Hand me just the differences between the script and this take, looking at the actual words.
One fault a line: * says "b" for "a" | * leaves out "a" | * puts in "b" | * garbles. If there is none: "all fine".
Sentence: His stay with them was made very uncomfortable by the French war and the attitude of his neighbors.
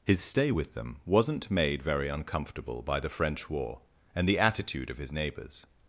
* says "wasn't" for "was"